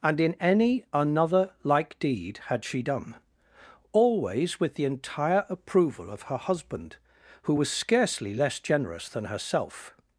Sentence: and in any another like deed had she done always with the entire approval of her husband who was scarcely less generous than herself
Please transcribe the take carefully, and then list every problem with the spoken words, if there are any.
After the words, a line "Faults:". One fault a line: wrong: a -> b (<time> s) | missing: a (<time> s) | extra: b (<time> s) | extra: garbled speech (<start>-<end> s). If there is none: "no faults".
and in any another like deed had she done always with the entire approval of her husband who was scarcely less generous than herself
Faults:
no faults